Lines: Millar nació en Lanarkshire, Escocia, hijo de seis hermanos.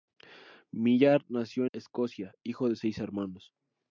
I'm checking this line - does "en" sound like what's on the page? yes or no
no